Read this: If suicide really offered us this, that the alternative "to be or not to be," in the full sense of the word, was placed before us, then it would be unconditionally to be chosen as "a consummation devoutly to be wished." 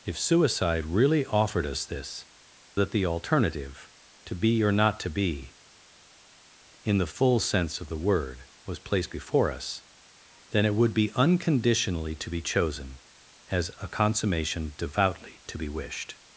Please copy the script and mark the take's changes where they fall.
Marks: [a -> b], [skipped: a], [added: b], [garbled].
If suicide really offered us this, that the alternative "to be or not to be," in the full sense of the word, was placed before us, then it would be unconditionally to be chosen as "a consummation devoutly to be wished."